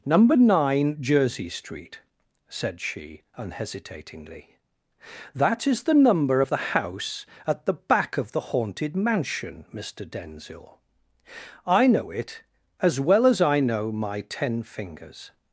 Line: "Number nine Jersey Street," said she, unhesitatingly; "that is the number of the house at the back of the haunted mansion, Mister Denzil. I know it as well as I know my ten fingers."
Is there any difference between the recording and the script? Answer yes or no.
no